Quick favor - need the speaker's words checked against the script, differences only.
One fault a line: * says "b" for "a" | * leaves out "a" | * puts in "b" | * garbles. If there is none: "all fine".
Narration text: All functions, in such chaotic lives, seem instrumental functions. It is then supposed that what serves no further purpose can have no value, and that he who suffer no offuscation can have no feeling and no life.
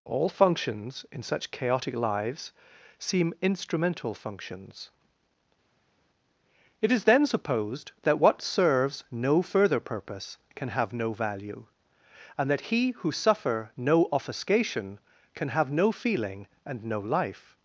all fine